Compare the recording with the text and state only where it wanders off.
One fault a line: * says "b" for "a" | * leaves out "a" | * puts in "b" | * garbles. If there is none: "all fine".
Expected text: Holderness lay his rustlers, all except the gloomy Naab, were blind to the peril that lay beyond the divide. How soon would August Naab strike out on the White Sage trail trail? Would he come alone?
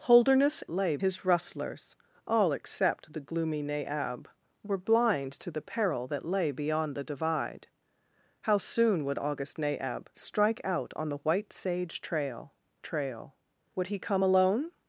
all fine